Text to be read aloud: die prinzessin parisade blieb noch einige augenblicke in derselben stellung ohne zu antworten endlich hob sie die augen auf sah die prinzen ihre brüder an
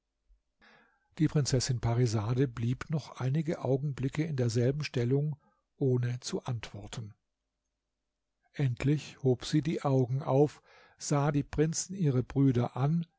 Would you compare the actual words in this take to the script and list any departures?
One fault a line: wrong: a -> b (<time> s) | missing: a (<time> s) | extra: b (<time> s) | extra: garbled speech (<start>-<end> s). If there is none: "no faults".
no faults